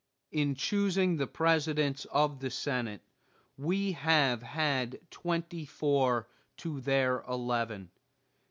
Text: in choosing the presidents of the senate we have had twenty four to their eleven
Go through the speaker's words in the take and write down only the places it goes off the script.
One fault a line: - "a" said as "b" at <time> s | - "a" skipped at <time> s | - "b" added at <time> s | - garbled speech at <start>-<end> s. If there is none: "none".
none